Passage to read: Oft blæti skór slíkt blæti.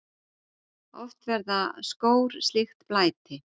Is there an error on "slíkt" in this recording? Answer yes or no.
no